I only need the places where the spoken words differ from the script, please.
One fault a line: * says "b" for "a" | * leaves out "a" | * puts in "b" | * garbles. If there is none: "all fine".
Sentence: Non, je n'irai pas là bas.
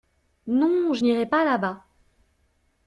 all fine